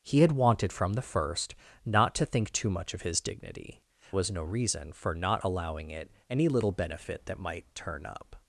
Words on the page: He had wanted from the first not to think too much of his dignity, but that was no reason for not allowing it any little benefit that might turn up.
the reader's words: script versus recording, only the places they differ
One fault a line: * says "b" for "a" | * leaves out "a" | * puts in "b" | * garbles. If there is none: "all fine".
* leaves out "but that"